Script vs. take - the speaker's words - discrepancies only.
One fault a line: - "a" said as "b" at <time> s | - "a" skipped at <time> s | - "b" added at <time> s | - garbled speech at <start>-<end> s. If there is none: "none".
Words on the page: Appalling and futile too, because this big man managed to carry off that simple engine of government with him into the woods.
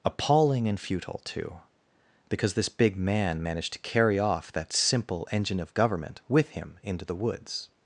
none